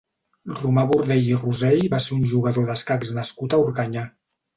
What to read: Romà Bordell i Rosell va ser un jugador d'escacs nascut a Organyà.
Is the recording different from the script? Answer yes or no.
no